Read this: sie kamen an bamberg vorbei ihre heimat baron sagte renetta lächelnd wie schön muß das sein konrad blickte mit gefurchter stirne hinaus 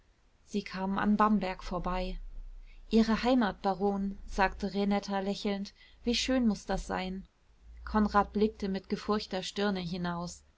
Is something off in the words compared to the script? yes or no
no